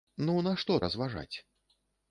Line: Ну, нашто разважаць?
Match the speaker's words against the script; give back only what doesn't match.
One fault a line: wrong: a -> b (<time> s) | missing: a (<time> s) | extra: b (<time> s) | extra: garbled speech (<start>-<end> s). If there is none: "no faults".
no faults